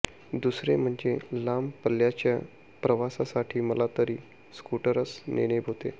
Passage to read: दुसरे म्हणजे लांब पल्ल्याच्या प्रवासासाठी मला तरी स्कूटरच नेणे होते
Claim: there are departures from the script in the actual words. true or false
false